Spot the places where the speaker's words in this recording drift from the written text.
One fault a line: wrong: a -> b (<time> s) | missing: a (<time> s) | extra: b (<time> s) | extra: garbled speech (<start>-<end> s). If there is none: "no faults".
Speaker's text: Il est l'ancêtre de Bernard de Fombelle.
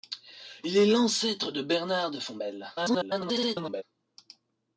extra: garbled speech (2.8-3.8 s)